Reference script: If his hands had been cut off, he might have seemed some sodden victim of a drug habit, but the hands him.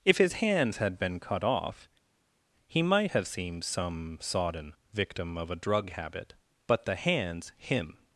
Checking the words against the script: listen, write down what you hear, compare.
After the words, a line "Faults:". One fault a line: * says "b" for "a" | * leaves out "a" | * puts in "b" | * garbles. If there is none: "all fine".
If his hands had been cut off, he might have seemed some sodden victim of a drug habit, but the hands him.
Faults:
all fine